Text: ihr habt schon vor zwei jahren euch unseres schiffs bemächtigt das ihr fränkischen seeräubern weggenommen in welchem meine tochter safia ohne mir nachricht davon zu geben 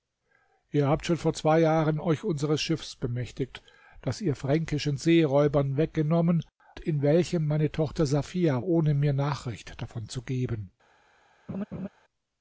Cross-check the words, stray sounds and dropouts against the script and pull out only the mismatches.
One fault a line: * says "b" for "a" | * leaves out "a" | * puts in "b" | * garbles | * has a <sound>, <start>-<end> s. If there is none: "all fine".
* has a laugh, 11.5-11.9 s